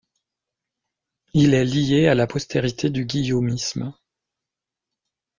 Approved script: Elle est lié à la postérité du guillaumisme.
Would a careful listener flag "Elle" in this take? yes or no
yes